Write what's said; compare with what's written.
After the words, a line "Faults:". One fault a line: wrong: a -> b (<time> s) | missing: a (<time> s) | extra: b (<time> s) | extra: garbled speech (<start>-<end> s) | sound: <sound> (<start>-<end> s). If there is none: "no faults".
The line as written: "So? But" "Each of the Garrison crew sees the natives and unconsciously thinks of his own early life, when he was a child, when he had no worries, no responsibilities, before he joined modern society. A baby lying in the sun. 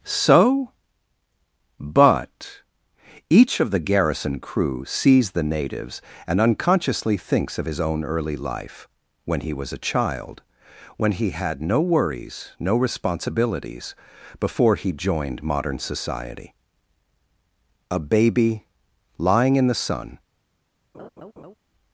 "So? But" "Each of the Garrison crew sees the natives and unconsciously thinks of his own early life, when he was a child, when he had no worries, no responsibilities, before he joined modern society. A baby lying in the sun.
Faults:
sound: laugh (20.9-21.5 s)